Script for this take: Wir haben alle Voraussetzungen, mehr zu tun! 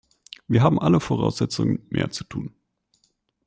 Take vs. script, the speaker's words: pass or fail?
pass